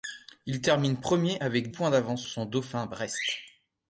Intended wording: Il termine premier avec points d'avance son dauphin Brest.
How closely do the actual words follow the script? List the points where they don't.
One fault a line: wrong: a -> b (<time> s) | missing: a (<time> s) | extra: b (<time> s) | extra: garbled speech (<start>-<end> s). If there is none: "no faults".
no faults